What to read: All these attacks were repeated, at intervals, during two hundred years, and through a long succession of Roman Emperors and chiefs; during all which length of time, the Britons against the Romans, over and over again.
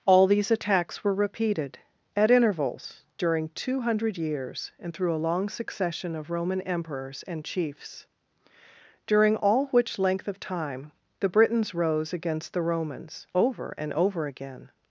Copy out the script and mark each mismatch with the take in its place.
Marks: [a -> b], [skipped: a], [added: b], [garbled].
All these attacks were repeated, at intervals, during two hundred years, and through a long succession of Roman Emperors and chiefs; during all which length of time, the Britons [added: rose] against the Romans, over and over again.